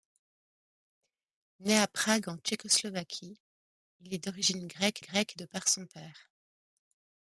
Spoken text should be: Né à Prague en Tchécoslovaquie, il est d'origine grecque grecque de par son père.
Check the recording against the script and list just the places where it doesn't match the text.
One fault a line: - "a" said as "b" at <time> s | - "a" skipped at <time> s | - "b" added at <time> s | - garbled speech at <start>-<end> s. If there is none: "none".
none